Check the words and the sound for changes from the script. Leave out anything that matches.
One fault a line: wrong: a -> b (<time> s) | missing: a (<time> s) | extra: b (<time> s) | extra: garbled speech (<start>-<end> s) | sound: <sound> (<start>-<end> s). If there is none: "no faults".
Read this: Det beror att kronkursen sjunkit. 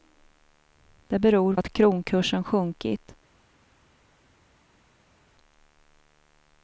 no faults